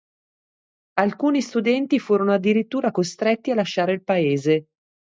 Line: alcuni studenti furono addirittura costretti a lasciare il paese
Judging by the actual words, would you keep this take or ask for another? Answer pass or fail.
pass